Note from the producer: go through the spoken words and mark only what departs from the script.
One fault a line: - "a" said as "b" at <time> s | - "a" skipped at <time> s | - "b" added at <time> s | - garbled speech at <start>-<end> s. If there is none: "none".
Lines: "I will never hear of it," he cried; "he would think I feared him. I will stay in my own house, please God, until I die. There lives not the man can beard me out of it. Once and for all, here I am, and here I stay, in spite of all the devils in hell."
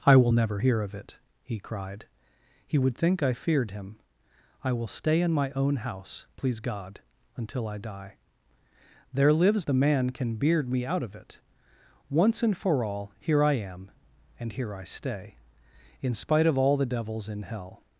- "not" skipped at 9.7 s